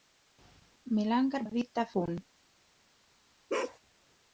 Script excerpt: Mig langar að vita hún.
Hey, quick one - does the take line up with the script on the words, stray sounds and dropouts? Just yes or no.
no